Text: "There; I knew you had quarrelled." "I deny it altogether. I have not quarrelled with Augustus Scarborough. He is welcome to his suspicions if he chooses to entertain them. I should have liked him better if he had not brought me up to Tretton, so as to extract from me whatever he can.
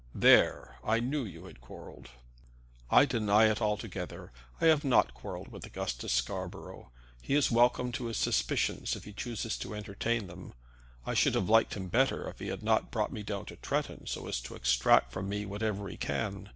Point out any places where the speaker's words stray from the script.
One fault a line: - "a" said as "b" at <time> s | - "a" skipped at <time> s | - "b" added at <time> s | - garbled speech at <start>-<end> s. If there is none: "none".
- "up" said as "down" at 13.2 s